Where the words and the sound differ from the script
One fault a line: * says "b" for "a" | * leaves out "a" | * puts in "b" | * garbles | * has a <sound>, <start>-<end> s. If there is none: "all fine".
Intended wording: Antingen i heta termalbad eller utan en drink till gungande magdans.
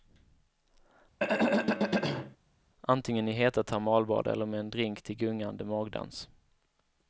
* has a throat clearing, 1.2-2.4 s
* says "med" for "utan"